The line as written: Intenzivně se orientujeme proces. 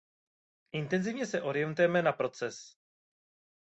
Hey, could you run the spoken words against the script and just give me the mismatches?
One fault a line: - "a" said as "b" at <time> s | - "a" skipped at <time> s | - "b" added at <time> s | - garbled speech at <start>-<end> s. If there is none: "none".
- "na" added at 2.0 s